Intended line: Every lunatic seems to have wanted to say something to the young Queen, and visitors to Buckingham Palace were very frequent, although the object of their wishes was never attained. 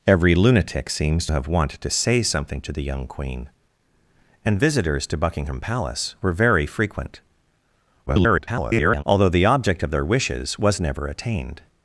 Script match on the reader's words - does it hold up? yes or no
no